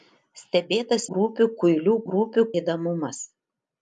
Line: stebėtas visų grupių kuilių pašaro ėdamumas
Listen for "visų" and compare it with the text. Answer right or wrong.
wrong